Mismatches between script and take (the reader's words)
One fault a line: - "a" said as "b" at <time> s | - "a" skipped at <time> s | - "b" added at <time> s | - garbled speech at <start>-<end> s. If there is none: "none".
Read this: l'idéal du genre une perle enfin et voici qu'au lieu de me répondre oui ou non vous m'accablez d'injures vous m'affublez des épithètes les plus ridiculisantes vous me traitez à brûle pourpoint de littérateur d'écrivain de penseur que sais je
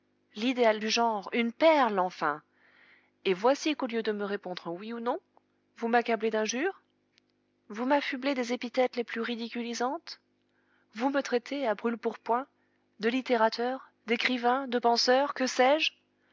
none